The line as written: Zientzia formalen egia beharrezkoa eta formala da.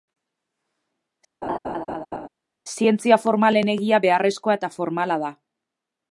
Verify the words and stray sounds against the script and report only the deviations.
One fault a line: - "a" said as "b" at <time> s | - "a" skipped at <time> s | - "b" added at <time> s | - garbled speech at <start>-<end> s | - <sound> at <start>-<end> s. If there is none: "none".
- laugh at 1.4-2.3 s